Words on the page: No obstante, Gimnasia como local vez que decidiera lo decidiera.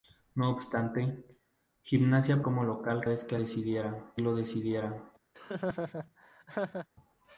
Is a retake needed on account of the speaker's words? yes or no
no